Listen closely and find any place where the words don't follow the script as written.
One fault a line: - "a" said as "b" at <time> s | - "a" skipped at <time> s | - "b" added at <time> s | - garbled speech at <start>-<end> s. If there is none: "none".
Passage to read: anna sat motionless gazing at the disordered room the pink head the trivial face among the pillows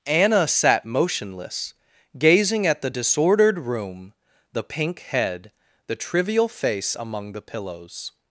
none